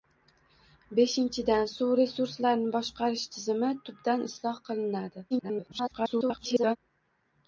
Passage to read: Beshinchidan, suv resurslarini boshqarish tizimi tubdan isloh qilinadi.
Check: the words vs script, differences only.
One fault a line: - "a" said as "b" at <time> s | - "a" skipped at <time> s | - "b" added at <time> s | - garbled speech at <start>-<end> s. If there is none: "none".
- garbled speech at 5.3-6.8 s